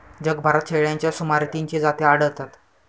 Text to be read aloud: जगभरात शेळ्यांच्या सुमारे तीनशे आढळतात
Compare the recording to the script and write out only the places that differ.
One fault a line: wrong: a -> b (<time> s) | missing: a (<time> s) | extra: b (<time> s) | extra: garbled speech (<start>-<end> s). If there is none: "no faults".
extra: जाती (1.8 s)